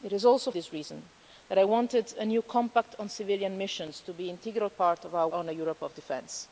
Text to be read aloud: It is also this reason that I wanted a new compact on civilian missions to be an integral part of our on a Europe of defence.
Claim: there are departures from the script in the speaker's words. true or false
false